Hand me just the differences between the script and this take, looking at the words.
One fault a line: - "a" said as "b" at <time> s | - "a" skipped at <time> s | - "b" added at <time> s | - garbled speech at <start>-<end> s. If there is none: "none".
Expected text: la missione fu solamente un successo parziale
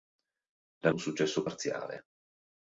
- "missione fu solamente" skipped at 0.9 s